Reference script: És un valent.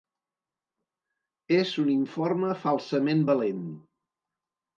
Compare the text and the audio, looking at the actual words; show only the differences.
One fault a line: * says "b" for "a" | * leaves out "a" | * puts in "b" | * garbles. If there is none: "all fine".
* puts in "informe falsament"